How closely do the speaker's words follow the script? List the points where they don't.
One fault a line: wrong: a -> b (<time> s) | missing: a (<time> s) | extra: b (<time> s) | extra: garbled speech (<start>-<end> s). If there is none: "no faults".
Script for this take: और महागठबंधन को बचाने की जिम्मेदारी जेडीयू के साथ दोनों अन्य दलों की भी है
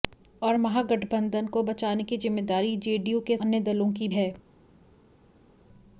missing: साथ दोनों (3.4 s)
missing: भी (4.1 s)